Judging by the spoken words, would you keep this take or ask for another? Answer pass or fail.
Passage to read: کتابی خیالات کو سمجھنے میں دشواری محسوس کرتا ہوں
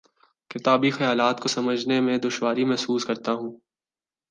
pass